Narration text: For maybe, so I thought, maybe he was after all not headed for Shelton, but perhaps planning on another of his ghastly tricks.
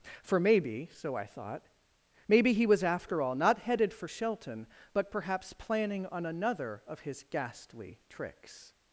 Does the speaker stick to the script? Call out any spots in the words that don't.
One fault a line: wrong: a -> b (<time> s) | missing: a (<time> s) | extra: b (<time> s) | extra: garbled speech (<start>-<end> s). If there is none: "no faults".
no faults